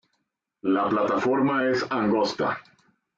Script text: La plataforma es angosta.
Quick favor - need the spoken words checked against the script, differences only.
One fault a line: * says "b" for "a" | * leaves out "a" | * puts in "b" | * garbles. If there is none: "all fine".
all fine